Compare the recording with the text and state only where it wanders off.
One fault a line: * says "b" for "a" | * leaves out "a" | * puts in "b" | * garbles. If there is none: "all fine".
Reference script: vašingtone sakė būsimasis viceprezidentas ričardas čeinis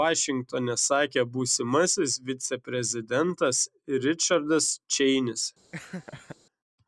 all fine